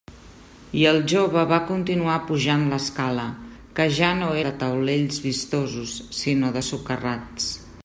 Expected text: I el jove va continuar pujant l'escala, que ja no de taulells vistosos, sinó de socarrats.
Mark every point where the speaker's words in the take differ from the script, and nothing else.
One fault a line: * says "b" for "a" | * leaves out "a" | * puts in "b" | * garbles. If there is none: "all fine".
all fine